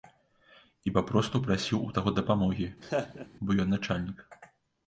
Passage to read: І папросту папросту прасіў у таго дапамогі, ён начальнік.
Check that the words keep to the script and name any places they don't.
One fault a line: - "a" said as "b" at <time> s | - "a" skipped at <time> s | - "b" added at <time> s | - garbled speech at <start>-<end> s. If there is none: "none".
- "папросту" skipped at 1.4 s
- "бо" added at 3.4 s